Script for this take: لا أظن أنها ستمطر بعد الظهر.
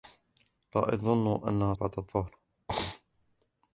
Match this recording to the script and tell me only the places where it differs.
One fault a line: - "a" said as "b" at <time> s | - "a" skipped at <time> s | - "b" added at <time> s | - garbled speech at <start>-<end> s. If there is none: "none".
- "ستمطر" skipped at 1.7 s